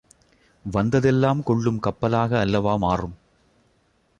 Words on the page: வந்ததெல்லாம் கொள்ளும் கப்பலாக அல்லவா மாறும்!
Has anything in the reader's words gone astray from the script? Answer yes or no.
no